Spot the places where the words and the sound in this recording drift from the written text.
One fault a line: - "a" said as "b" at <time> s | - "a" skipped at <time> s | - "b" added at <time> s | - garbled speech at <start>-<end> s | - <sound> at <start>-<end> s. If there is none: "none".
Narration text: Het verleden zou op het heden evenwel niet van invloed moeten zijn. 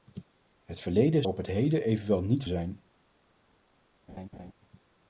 - "zou" skipped at 1.2 s
- "van invloed moeten" skipped at 2.4 s
- laugh at 4.1-4.5 s